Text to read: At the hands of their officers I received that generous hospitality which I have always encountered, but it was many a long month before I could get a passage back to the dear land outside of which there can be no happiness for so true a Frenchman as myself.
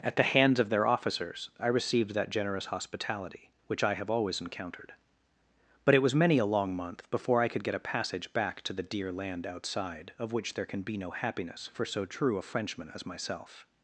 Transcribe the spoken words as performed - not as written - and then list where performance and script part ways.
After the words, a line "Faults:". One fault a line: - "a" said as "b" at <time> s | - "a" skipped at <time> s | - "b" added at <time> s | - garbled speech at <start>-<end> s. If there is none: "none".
At the hands of their officers I received that generous hospitality which I have always encountered, but it was many a long month before I could get a passage back to the dear land outside of which there can be no happiness for so true a Frenchman as myself.
Faults:
none